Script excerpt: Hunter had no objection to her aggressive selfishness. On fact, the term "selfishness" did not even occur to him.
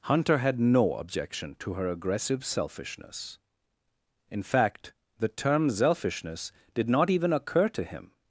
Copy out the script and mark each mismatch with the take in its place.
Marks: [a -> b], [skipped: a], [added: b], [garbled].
Hunter had no objection to her aggressive selfishness. [On -> In] fact, the term "selfishness" did not even occur to him.